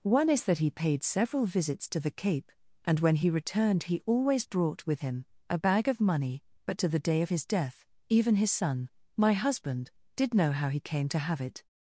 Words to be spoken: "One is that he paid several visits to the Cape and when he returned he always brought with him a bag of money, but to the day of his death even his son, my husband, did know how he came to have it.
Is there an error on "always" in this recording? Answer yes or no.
no